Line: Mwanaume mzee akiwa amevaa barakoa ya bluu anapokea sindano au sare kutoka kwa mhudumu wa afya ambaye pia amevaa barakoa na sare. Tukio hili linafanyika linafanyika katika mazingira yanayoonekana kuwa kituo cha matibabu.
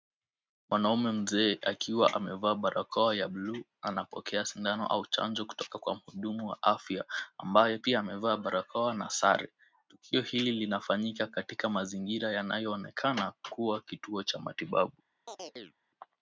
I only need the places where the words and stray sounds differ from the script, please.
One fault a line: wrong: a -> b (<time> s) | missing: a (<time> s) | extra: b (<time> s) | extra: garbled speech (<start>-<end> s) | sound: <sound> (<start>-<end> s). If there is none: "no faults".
wrong: sare -> chanjo (5.1 s)
missing: linafanyika (11.3 s)
sound: chirp (15.3-15.8 s)